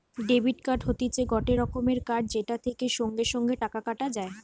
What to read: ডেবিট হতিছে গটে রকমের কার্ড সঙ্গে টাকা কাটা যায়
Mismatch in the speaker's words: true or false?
true